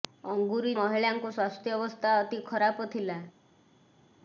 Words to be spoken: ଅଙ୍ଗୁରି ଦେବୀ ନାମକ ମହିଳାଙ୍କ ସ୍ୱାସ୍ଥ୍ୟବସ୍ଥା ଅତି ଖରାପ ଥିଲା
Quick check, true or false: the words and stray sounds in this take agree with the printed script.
false